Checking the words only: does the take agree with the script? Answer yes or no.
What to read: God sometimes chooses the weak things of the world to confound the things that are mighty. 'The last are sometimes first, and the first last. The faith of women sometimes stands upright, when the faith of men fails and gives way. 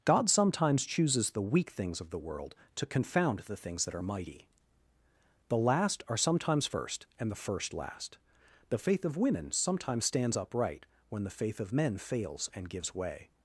yes